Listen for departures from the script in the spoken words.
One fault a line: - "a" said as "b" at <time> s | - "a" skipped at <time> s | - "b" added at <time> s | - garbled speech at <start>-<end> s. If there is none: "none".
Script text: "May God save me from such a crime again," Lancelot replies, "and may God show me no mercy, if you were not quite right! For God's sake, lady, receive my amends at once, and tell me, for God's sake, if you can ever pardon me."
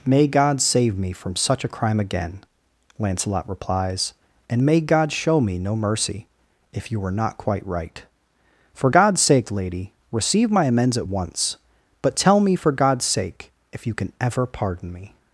- "and" said as "but" at 12.0 s